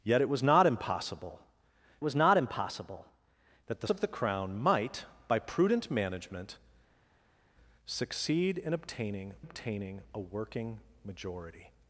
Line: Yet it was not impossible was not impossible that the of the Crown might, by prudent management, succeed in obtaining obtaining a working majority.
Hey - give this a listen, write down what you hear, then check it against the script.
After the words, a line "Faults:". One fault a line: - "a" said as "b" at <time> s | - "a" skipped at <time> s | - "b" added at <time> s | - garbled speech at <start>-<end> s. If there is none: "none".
Yet it was not impossible was not impossible that the of the Crown might, by prudent management, succeed in obtaining obtaining a working majority.
Faults:
none